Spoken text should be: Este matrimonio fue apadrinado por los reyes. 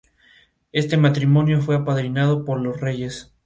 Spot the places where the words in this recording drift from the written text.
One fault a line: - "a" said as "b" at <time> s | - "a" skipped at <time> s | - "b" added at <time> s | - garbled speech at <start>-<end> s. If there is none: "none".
none